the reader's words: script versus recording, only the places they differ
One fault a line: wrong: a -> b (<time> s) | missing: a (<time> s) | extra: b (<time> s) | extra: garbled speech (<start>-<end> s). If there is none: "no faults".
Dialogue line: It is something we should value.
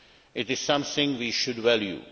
no faults